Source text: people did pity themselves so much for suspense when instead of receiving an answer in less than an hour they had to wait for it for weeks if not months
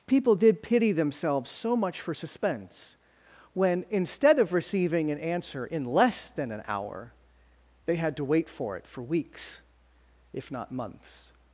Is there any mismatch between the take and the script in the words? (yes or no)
no